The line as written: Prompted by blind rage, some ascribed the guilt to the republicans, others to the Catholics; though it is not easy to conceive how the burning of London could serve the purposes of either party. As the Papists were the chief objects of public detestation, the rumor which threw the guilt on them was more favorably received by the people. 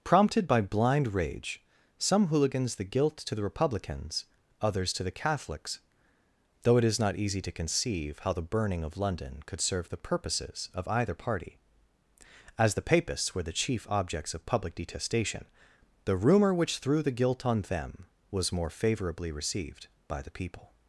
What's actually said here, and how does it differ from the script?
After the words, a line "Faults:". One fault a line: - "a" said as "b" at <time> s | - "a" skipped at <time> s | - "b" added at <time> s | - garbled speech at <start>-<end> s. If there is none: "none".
Prompted by blind rage, some hooligans the guilt to the republicans, others to the Catholics; though it is not easy to conceive how the burning of London could serve the purposes of either party. As the Papists were the chief objects of public detestation, the rumor which threw the guilt on them was more favorably received by the people.
Faults:
- "ascribed" said as "hooligans" at 2.3 s